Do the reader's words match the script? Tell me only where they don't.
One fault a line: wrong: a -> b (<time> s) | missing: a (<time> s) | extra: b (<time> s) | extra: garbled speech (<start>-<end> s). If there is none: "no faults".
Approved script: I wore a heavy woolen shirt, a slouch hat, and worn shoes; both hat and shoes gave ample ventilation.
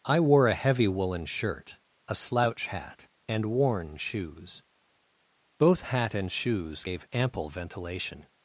no faults